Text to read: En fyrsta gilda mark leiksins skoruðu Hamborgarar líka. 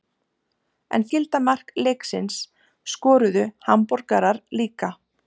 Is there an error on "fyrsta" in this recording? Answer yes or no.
yes